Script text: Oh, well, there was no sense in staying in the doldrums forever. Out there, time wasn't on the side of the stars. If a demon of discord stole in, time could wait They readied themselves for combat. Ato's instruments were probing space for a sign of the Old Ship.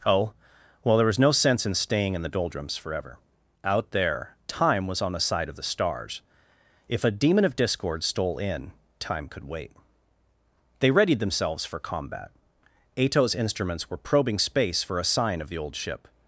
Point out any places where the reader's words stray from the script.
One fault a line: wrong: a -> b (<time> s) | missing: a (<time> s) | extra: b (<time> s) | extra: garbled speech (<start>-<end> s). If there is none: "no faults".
wrong: wasn't -> was (4.9 s)